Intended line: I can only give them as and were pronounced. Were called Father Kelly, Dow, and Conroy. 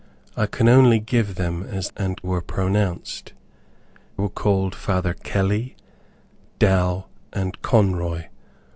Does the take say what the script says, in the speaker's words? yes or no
yes